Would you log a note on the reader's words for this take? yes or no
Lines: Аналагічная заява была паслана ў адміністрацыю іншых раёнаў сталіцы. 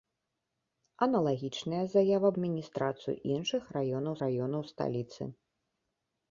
yes